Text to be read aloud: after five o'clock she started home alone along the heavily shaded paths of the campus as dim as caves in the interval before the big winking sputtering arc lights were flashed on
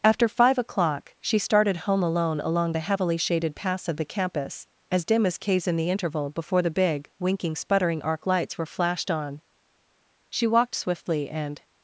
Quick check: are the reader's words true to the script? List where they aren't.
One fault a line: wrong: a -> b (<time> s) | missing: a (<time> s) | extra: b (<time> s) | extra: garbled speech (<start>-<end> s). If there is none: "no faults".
extra: she walked swiftly and (10.3 s)